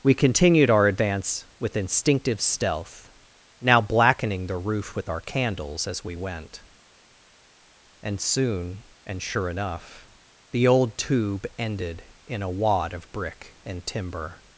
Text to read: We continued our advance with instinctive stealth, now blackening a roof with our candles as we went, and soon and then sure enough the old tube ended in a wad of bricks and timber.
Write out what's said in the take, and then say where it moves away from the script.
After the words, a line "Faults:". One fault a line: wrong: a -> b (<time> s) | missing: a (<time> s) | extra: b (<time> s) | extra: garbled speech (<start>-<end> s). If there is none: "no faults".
We continued our advance with instinctive stealth, now blackening the roof with our candles as we went, and soon and sure enough the old tube ended in a wad of brick and timber.
Faults:
wrong: a -> the (4.5 s)
missing: then (9.2 s)
wrong: bricks -> brick (13.1 s)